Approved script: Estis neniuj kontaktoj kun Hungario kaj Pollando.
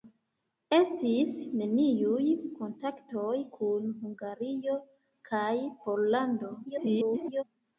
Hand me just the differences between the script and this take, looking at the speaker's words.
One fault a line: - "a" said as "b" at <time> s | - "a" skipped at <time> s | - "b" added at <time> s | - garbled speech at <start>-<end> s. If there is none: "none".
- garbled speech at 6.7-7.4 s